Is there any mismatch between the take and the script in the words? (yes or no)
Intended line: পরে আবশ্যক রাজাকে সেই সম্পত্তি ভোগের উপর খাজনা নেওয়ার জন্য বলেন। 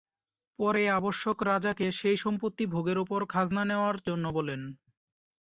no